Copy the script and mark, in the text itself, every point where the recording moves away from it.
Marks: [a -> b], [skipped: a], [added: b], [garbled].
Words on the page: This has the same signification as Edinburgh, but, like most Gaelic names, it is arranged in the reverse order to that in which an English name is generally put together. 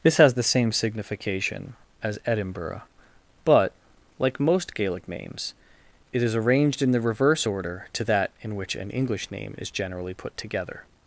This has the same signification as Edinburgh, but, like most Gaelic names, it is arranged in the reverse order to that in which an English name is generally put together.